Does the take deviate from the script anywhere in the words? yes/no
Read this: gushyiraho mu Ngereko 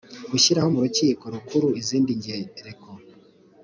yes